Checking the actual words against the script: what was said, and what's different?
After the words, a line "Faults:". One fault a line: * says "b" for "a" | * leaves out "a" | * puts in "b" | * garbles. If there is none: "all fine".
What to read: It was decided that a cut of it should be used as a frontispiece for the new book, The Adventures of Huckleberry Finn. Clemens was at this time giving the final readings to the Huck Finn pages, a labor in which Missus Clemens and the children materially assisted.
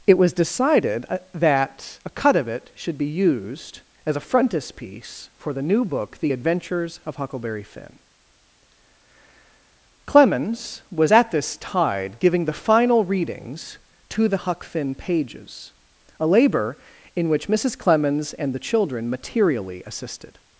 It was decided that a cut of it should be used as a frontispiece for the new book, The Adventures of Huckleberry Finn. Clemens was at this tide giving the final readings to the Huck Finn pages, a labor in which Missus Clemens and the children materially assisted.
Faults:
* says "tide" for "time"